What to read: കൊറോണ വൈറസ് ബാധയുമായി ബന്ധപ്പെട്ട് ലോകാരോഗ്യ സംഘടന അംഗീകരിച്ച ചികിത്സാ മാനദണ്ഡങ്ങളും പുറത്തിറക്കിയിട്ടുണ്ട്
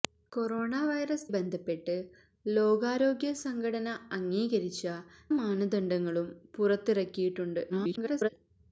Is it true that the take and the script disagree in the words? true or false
true